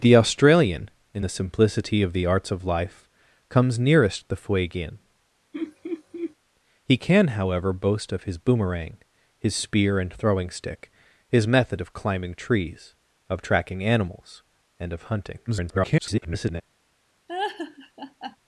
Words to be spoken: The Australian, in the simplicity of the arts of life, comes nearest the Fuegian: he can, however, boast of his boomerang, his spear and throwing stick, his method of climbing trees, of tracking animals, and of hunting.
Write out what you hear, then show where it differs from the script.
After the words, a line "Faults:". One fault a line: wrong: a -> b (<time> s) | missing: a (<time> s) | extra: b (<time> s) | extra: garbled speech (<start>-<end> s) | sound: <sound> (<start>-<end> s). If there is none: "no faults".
The Australian, in the simplicity of the arts of life, comes nearest the Fuegian: he can, however, boast of his boomerang, his spear and throwing stick, his method of climbing trees, of tracking animals, and of hunting. [garbled]
Faults:
sound: laugh (5.5-6.3 s)
extra: garbled speech (15.5-16.6 s)
sound: laugh (17.3-18.4 s)